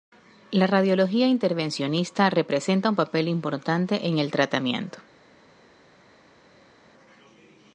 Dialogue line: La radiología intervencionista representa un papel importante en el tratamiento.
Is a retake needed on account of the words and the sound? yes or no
no